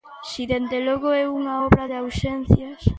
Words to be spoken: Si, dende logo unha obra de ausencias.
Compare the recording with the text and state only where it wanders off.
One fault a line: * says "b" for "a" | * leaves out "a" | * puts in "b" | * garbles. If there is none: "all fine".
* puts in "é"